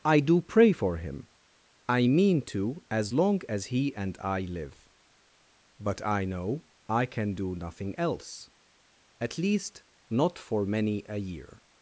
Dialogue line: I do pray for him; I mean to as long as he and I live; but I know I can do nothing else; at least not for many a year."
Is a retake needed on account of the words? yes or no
no